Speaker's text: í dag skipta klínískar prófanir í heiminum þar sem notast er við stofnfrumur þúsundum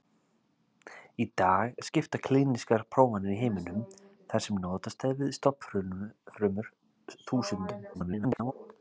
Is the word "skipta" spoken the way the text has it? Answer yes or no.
yes